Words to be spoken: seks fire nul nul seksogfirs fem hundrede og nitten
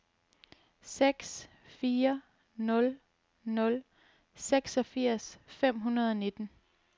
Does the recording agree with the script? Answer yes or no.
yes